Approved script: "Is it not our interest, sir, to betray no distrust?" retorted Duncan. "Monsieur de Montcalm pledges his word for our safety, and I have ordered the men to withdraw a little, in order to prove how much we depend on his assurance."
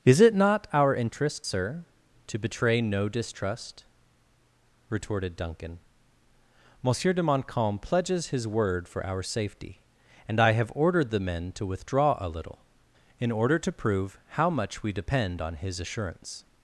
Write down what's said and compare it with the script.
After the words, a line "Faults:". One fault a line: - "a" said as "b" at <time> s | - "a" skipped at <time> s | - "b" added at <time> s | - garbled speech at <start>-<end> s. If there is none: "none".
"Is it not our interest, sir, to betray no distrust?" retorted Duncan. "Monsieur de Montcalm pledges his word for our safety, and I have ordered the men to withdraw a little, in order to prove how much we depend on his assurance."
Faults:
none